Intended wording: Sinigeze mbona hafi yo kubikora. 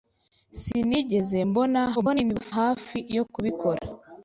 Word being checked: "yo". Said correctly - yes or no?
yes